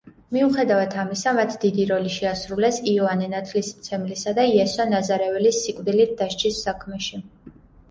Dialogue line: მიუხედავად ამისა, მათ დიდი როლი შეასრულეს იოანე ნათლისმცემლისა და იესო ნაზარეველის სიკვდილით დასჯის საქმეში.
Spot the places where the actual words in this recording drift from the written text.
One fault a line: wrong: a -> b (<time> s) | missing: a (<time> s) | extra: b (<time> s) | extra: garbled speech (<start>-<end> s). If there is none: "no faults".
no faults